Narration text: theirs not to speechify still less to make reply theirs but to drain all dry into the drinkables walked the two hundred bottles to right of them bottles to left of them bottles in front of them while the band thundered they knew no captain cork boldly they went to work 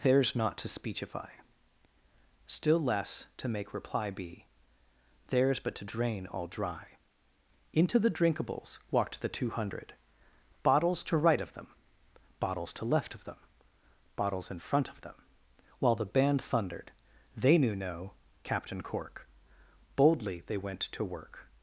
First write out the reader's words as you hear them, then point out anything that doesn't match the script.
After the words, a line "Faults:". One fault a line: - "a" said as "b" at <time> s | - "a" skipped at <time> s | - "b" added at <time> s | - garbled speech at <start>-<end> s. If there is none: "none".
theirs not to speechify still less to make reply be theirs but to drain all dry into the drinkables walked the two hundred bottles to right of them bottles to left of them bottles in front of them while the band thundered they knew no captain cork boldly they went to work
Faults:
- "be" added at 4.1 s